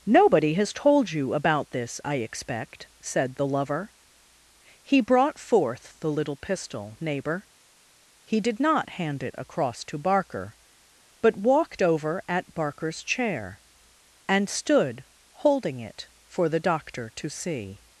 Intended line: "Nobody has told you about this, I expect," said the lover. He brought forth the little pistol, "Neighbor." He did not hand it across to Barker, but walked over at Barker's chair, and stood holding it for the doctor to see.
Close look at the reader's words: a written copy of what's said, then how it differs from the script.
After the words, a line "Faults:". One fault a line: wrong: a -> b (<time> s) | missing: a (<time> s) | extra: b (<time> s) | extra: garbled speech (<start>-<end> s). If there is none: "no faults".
"Nobody has told you about this, I expect," said the lover. He brought forth the little pistol, "Neighbor." He did not hand it across to Barker, but walked over at Barker's chair, and stood holding it for the doctor to see.
Faults:
no faults